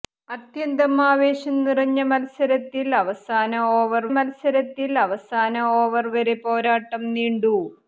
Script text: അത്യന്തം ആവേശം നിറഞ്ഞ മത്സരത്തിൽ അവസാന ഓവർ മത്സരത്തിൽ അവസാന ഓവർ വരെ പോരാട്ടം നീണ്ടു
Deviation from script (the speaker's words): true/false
false